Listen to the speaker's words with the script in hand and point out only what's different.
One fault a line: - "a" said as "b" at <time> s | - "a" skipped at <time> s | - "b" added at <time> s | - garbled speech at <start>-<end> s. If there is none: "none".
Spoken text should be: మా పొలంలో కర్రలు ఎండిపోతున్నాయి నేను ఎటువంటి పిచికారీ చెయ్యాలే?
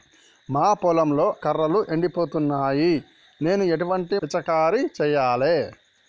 none